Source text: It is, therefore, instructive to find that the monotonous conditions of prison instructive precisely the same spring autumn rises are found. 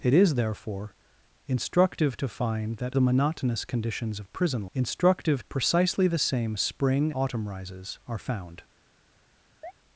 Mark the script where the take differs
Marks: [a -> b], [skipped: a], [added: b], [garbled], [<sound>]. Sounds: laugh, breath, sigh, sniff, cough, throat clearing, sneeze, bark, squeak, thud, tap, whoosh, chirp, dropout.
It is, therefore, instructive to find that the monotonous conditions of prison instructive precisely the same spring autumn rises are found. [chirp]